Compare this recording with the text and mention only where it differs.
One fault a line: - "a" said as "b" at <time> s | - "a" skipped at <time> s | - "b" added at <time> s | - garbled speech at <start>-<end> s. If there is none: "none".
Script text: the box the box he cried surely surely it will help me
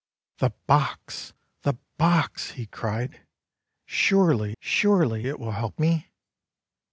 none